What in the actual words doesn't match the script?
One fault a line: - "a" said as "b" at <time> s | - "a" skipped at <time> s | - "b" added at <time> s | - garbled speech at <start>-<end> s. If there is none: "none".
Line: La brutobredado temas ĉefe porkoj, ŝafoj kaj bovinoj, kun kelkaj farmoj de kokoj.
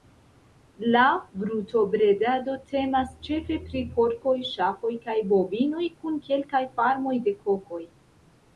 - "pri" added at 3.7 s